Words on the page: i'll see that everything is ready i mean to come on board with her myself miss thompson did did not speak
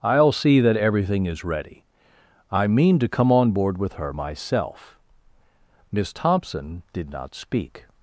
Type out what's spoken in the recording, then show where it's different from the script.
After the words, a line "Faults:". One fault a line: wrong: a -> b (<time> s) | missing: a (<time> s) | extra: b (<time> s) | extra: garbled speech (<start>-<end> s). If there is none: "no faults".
i'll see that everything is ready i mean to come on board with her myself miss thompson did not speak
Faults:
missing: did (7.1 s)